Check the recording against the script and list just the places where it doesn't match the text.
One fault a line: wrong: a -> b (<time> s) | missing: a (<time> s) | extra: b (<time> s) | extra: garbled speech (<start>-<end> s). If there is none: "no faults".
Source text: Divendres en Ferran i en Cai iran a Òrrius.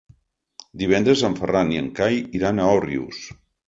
no faults